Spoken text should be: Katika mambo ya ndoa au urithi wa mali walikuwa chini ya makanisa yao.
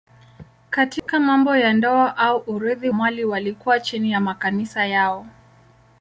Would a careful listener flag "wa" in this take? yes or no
yes